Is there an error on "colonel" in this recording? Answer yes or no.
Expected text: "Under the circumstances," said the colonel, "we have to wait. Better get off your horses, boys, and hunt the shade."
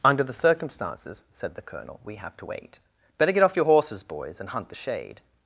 no